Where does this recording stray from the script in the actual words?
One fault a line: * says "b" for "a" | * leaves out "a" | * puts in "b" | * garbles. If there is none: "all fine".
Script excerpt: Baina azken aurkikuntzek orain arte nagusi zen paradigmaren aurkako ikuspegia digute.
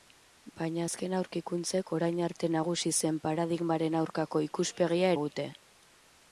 all fine